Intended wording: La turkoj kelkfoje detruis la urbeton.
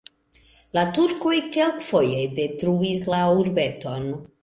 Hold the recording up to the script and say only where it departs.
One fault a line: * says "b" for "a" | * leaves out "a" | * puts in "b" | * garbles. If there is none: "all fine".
all fine